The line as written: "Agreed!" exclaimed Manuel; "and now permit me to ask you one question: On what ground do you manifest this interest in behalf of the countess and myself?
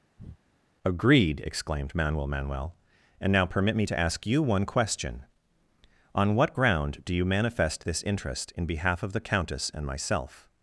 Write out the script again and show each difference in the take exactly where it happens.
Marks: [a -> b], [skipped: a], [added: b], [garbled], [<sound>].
[breath] "Agreed!" exclaimed Manuel; [added: Manuel] "and now permit me to ask you one question: On what ground do you manifest this interest in behalf of the countess and myself?